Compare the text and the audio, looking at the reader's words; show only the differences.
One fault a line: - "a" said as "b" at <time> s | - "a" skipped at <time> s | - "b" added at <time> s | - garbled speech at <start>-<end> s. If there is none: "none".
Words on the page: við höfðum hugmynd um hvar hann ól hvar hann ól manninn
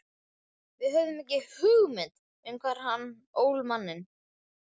- "ekki" added at 1.2 s
- "hvar hann ól" skipped at 3.6 s